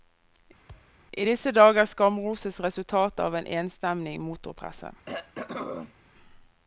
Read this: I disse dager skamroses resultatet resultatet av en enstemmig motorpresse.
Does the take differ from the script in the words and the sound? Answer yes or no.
yes